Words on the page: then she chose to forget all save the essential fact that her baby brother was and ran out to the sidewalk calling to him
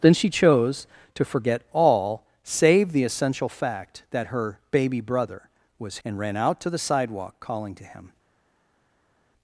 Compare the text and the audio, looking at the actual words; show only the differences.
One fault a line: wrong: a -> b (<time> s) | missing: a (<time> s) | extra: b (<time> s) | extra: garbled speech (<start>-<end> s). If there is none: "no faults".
no faults